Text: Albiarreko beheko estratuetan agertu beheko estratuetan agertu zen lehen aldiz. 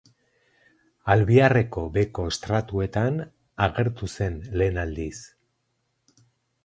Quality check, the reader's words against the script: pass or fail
fail